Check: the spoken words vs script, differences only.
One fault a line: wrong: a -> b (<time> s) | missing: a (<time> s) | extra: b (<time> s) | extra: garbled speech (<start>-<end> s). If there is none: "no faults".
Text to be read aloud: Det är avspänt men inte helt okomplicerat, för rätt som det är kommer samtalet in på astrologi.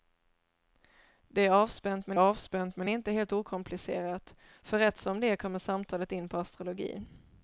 extra: avspänt men (2.2 s)